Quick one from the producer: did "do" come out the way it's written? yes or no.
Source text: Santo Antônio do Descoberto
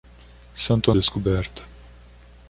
no